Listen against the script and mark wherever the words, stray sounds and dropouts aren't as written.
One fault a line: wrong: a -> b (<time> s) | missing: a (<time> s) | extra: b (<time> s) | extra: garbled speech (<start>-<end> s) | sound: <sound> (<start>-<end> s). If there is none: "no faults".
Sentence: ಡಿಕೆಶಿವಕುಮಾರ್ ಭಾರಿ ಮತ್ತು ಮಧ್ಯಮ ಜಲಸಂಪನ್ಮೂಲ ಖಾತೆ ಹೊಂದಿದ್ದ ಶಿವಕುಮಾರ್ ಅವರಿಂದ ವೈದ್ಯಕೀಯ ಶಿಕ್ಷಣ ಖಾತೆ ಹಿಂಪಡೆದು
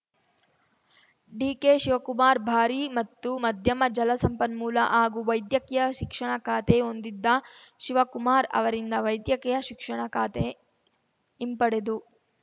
extra: ಹಾಗೂ ವೈದ್ಯಕೀಯ ಶಿಕ್ಷಣ (4.9 s)